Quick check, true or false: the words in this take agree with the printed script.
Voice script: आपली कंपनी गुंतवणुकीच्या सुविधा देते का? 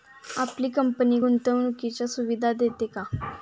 true